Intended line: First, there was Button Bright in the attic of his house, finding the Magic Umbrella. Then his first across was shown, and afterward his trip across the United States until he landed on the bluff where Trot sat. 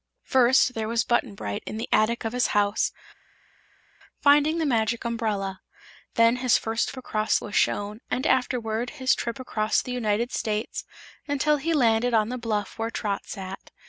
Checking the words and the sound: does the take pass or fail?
pass